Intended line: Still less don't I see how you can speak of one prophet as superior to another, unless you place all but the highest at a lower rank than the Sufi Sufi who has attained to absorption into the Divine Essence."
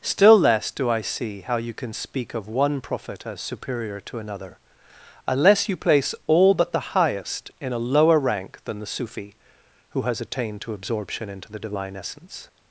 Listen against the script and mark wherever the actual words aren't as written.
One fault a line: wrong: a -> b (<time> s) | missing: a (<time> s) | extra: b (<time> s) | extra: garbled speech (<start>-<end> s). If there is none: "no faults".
wrong: don't -> do (0.7 s)
wrong: at -> in (7.6 s)
missing: Sufi (9.4 s)